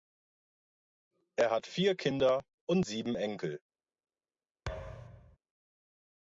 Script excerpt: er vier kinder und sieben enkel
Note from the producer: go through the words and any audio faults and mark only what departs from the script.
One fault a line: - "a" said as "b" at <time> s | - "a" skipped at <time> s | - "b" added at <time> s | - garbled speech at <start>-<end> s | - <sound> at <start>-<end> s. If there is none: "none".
- "hat" added at 1.5 s
- thud at 4.7-5.4 s